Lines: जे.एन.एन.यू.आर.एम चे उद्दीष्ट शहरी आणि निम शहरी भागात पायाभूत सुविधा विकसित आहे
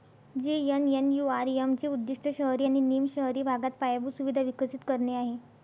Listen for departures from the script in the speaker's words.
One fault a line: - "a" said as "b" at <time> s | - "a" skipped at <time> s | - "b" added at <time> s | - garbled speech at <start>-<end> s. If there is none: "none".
- "करणे" added at 4.9 s